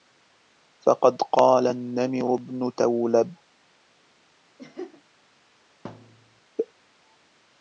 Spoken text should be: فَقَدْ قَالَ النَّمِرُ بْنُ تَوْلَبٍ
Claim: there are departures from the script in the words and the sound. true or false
true